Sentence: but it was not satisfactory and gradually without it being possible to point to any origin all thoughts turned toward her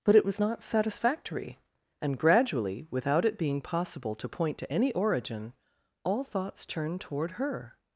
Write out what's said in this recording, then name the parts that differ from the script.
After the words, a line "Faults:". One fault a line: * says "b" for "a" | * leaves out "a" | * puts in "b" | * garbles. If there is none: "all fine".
but it was not satisfactory and gradually without it being possible to point to any origin all thoughts turned toward her
Faults:
all fine